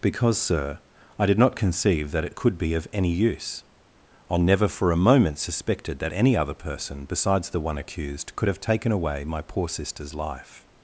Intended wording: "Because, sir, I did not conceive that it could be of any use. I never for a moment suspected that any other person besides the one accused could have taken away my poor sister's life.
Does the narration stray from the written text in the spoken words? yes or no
no